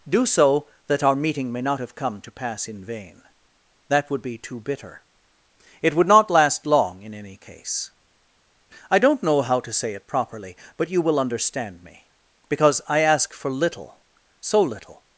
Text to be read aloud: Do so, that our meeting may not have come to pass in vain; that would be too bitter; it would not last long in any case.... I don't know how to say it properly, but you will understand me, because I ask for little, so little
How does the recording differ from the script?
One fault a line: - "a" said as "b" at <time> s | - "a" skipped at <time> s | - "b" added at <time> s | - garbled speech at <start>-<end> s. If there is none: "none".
none